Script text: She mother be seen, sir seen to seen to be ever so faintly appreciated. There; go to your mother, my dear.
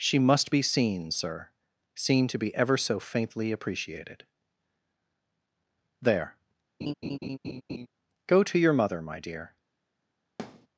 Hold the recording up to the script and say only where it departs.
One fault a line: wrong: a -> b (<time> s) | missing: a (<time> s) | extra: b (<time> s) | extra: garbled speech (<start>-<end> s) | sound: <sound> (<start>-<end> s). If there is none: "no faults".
wrong: mother -> must (0.2 s)
missing: seen to (2.4 s)
sound: laugh (6.8-7.9 s)
sound: thud (10.4-10.7 s)